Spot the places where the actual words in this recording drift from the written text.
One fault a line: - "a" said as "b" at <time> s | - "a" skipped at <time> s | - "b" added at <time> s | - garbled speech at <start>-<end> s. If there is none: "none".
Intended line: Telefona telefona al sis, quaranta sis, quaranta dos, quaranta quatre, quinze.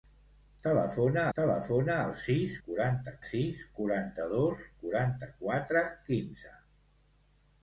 none